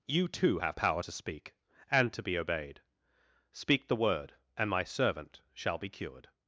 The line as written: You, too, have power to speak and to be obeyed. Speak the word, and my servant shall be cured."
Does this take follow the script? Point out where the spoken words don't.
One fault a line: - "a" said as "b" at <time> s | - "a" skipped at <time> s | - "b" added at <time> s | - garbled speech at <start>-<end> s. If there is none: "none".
none